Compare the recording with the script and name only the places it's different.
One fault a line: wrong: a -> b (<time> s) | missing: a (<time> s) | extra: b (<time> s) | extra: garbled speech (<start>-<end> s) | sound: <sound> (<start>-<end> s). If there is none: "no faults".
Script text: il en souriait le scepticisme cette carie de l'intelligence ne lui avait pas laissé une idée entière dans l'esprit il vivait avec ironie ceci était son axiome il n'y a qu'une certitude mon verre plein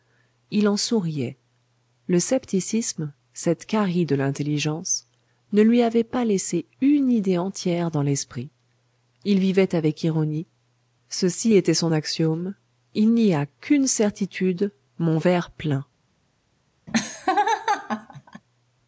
sound: laugh (16.9-18.4 s)